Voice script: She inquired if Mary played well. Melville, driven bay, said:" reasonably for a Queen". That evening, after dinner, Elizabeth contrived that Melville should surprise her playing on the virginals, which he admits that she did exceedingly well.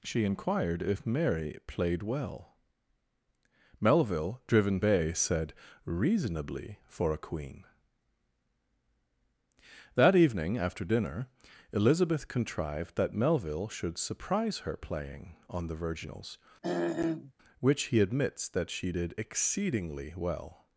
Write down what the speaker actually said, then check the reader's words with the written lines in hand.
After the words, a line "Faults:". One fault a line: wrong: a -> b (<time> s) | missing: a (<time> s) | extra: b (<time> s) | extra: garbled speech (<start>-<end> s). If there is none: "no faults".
She inquired if Mary played well. Melville, driven bay, said:" reasonably for a Queen". That evening, after dinner, Elizabeth contrived that Melville should surprise her playing on the virginals, which he admits that she did exceedingly well.
Faults:
no faults